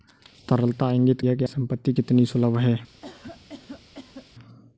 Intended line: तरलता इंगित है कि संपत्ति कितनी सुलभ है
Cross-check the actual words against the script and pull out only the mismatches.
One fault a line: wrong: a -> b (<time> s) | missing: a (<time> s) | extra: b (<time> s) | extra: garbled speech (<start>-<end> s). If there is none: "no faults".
no faults